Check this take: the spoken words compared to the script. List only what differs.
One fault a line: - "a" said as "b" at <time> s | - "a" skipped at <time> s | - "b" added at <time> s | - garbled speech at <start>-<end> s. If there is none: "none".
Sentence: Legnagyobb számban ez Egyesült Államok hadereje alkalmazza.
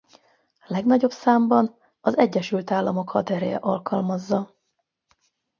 - "ez" said as "az" at 2.0 s